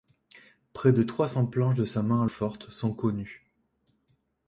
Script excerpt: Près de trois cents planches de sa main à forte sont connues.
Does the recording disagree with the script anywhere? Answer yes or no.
no